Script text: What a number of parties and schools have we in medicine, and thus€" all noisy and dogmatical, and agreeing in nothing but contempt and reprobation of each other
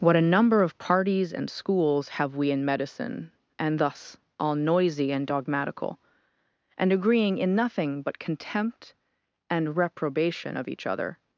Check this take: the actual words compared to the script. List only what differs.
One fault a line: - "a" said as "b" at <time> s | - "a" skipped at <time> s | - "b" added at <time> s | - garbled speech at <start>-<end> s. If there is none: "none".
none